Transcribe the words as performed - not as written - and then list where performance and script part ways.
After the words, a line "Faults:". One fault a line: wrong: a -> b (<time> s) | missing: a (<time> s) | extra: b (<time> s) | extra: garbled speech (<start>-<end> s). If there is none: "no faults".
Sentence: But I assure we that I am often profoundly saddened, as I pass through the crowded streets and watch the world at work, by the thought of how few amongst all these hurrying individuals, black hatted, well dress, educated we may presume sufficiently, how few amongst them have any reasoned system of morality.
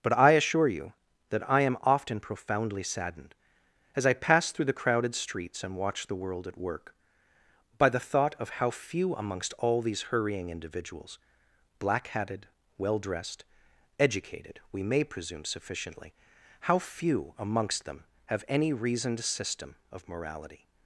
But I assure you that I am often profoundly saddened, as I pass through the crowded streets and watch the world at work, by the thought of how few amongst all these hurrying individuals, black hatted, well dressed, educated we may presume sufficiently, how few amongst them have any reasoned system of morality.
Faults:
wrong: we -> you (0.7 s)
wrong: dress -> dressed (13.0 s)